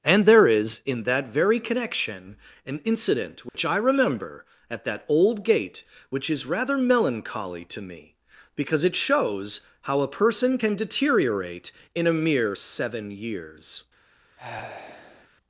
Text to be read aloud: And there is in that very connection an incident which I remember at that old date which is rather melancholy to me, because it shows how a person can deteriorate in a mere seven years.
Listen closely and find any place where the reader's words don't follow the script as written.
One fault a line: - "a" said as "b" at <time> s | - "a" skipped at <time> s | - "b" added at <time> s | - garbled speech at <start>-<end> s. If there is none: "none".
- "date" said as "gate" at 5.4 s